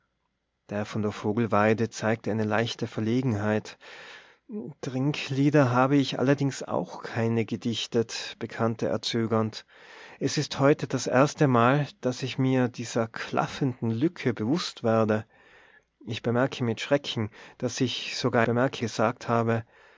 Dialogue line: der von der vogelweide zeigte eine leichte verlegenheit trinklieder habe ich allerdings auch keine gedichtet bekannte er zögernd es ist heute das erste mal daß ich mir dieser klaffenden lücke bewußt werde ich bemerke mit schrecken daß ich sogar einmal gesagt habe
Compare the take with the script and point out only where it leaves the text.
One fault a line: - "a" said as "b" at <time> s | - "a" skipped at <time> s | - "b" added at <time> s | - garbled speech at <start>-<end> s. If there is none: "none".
- "einmal" said as "bemerke" at 18.4 s